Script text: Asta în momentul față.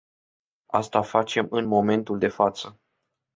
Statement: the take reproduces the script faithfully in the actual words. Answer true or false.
false